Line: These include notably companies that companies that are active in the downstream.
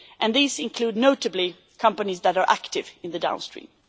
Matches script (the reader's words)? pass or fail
fail